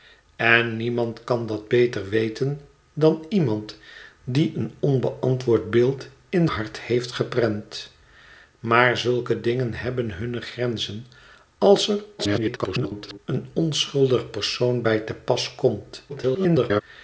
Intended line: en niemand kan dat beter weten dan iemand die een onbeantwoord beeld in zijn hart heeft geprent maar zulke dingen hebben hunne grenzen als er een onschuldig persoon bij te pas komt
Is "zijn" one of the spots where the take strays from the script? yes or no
yes